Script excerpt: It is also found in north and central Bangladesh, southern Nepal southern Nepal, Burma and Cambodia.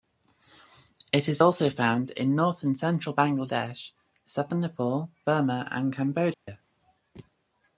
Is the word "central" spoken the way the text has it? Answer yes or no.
yes